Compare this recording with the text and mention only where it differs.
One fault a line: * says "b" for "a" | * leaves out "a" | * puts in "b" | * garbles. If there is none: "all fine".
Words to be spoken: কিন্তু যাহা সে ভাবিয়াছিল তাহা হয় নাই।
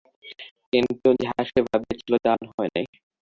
all fine